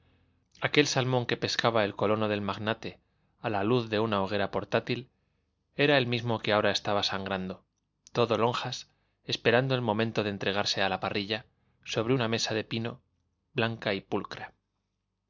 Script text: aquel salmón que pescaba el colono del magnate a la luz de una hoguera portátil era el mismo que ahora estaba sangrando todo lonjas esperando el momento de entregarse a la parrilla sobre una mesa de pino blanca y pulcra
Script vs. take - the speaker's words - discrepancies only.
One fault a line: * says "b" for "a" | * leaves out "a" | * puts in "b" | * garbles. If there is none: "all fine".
all fine